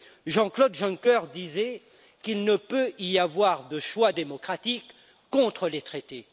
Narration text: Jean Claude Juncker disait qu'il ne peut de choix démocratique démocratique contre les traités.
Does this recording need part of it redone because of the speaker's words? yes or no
yes